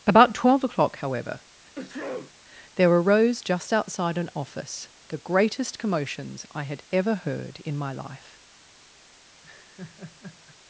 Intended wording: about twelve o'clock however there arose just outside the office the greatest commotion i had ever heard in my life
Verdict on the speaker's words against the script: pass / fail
fail